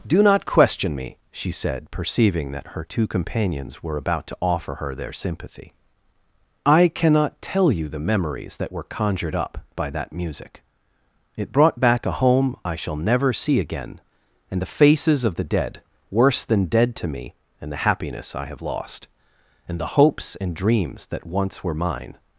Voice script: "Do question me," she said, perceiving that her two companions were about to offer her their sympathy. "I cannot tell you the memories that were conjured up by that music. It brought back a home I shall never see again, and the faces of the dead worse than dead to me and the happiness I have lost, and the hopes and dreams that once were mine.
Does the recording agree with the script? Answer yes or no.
no